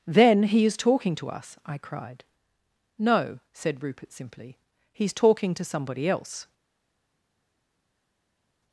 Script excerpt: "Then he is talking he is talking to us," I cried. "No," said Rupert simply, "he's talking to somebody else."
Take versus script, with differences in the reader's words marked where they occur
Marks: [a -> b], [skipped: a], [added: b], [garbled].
"Then he is talking [skipped: he is talking] to us," I cried. "No," said Rupert simply, "he's talking to somebody else."